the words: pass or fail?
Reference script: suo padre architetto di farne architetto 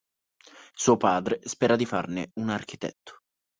fail